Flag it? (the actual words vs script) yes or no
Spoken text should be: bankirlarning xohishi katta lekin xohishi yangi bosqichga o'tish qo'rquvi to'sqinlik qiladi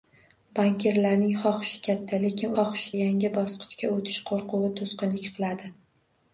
no